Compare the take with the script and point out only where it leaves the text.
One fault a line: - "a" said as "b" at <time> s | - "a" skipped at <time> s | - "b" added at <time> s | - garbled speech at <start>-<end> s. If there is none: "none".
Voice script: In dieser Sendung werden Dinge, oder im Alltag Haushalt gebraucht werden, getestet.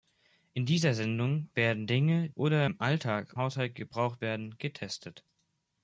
none